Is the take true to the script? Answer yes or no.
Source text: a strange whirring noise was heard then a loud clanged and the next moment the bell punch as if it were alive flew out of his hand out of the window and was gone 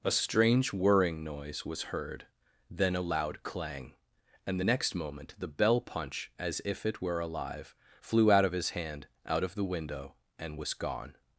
no